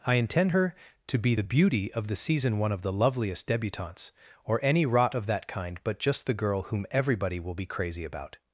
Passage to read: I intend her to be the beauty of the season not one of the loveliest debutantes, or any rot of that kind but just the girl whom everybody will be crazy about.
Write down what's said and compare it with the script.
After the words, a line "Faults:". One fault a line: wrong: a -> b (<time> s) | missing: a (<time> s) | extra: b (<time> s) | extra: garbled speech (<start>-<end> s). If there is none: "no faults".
I intend her to be the beauty of the season one of the loveliest debutantes, or any rot of that kind but just the girl whom everybody will be crazy about.
Faults:
missing: not (2.6 s)